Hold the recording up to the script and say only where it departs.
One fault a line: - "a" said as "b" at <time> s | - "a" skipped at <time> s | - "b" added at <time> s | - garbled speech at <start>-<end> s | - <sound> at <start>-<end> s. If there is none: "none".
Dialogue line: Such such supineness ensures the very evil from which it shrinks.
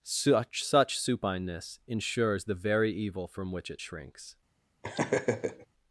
- laugh at 4.8-5.7 s